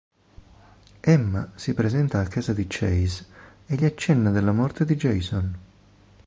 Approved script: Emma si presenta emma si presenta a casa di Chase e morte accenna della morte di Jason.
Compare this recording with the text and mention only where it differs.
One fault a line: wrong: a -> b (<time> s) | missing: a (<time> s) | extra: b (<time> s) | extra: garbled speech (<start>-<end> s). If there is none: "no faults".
missing: emma si presenta (2.2 s)
wrong: morte -> gli (3.7 s)